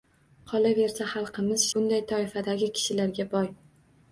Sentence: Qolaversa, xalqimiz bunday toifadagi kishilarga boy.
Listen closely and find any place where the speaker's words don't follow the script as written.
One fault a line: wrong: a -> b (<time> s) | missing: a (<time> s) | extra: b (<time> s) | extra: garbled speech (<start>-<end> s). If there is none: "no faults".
no faults